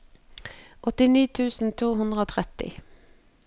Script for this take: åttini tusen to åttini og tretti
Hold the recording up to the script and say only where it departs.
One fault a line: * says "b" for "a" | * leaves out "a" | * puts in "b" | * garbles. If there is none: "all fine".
* says "hundre" for "åttini"